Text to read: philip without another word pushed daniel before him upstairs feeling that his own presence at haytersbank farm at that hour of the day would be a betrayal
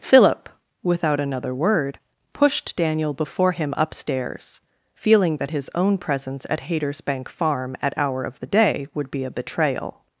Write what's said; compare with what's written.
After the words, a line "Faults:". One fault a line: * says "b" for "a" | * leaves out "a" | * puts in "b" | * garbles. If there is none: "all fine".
philip without another word pushed daniel before him upstairs feeling that his own presence at haytersbank farm at hour of the day would be a betrayal
Faults:
* leaves out "that"